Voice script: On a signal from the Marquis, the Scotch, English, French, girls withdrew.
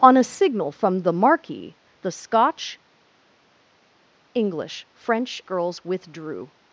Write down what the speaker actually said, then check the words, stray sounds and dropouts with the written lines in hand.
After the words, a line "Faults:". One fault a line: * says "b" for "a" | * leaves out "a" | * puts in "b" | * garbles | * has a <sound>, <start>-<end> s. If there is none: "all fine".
On a signal from the Marquis, the Scotch, English, French, girls withdrew.
Faults:
all fine